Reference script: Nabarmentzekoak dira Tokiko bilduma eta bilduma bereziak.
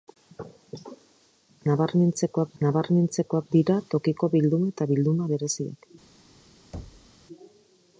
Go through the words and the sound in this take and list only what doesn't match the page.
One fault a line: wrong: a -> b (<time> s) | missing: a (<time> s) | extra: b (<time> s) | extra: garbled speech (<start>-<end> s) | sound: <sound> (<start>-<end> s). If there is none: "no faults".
extra: nabarmentzekoak (2.6 s)
sound: thud (6.7-7.1 s)